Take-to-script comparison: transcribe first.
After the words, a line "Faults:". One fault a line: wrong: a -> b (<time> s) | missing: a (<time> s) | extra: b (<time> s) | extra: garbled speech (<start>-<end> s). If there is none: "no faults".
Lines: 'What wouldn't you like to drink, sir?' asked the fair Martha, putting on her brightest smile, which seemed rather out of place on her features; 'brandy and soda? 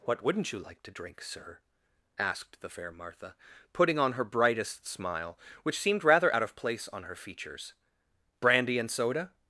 'What wouldn't you like to drink, sir?' asked the fair Martha, putting on her brightest smile, which seemed rather out of place on her features; 'brandy and soda?
Faults:
no faults